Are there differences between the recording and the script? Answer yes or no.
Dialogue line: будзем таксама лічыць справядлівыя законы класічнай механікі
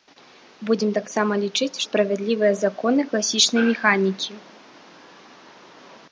no